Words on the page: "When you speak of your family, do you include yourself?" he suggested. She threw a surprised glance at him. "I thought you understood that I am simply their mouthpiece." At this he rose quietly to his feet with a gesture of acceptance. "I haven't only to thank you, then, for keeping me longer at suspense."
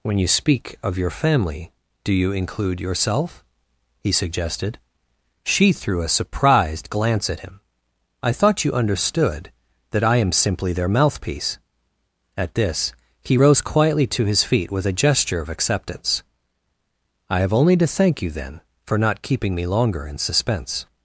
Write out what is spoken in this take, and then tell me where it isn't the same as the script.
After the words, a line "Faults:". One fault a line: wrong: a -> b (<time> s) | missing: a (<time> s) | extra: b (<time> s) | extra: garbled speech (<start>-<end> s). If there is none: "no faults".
"When you speak of your family, do you include yourself?" he suggested. She threw a surprised glance at him. "I thought you understood that I am simply their mouthpiece." At this he rose quietly to his feet with a gesture of acceptance. "I have only to thank you, then, for not keeping me longer in suspense."
Faults:
wrong: haven't -> have (17.4 s)
extra: not (19.0 s)
wrong: at -> in (20.1 s)